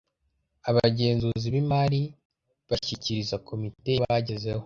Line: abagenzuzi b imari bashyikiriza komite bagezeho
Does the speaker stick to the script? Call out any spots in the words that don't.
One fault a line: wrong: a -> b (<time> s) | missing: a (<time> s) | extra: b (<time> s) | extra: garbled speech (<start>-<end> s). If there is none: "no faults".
no faults